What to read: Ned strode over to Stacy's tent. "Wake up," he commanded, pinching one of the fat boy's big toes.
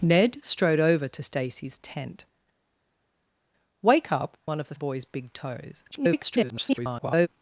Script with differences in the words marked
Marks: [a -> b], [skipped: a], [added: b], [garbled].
Ned strode over to Stacy's tent. "Wake up," [skipped: he commanded, pinching] one of the [skipped: fat] boy's big toes. [garbled]